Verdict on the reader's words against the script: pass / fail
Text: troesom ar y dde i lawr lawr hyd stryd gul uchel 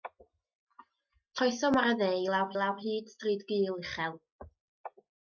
pass